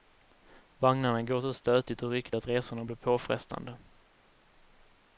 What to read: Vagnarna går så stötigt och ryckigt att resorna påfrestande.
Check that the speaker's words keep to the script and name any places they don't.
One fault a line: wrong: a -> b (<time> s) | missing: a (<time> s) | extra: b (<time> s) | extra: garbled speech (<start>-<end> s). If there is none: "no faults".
extra: blir (2.8 s)